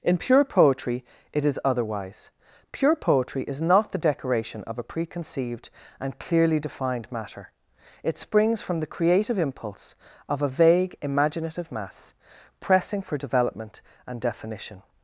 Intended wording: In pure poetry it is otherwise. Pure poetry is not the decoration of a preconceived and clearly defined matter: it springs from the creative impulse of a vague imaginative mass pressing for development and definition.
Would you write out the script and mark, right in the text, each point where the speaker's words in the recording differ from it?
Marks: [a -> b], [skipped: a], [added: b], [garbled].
In pure poetry it is otherwise. Pure poetry is not the decoration of a preconceived and clearly defined matter: it springs from the creative impulse of a vague imaginative mass pressing for development and definition.